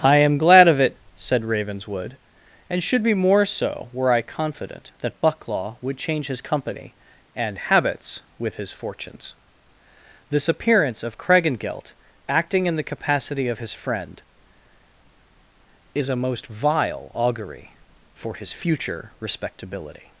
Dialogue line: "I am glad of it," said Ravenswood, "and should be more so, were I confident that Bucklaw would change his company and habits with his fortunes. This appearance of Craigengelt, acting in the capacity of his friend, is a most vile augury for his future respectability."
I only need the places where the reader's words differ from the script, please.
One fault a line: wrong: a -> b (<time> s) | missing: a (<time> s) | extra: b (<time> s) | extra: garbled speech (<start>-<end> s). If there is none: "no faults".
no faults